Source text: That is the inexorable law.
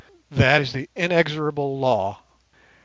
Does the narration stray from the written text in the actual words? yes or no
no